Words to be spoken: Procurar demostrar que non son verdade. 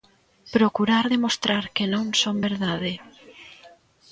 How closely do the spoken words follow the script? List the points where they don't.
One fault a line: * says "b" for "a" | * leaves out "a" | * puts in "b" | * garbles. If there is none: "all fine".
all fine